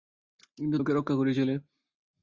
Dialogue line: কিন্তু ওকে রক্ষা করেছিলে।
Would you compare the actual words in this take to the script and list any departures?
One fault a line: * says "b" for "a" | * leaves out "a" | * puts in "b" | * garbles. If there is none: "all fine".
all fine